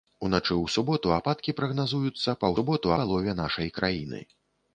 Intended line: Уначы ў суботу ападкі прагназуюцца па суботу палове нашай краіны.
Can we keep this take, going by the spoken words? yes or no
yes